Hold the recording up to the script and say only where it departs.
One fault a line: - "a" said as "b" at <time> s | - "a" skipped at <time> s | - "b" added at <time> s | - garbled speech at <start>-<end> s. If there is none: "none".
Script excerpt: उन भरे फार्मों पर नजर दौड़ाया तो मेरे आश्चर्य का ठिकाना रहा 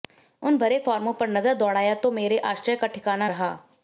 none